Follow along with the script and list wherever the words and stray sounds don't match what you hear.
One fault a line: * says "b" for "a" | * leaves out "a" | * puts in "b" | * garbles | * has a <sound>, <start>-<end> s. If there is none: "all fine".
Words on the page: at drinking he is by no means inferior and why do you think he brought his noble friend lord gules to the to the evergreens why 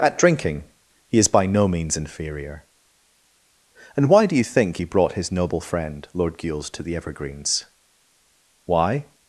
* leaves out "to the"